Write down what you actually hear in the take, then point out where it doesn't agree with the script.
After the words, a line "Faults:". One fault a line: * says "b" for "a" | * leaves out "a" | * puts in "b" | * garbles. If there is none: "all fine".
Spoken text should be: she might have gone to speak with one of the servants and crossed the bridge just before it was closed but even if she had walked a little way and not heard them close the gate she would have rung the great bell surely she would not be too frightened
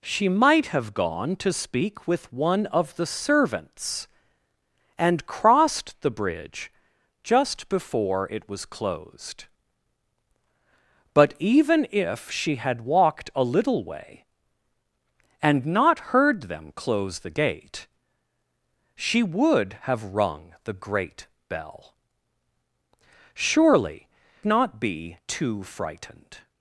she might have gone to speak with one of the servants and crossed the bridge just before it was closed but even if she had walked a little way and not heard them close the gate she would have rung the great bell surely not be too frightened
Faults:
* leaves out "she would"